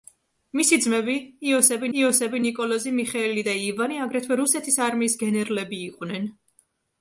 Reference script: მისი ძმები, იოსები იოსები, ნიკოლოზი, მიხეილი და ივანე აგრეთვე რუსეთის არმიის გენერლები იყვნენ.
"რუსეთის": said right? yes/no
yes